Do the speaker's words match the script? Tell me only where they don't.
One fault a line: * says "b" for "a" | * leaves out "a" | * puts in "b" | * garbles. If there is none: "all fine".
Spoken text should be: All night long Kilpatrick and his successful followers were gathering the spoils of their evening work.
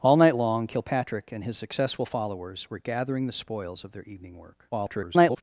* garbles